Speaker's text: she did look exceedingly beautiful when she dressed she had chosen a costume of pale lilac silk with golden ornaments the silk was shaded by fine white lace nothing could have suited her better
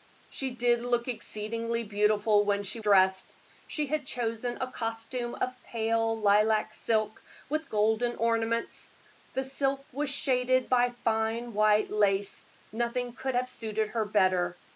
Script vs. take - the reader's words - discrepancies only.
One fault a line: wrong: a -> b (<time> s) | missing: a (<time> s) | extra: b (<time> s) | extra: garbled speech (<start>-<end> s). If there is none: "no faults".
no faults